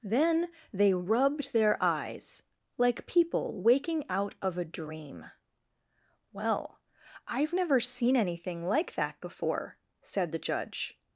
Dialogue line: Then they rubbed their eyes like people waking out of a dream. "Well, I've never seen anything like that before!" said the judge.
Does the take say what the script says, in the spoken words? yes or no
yes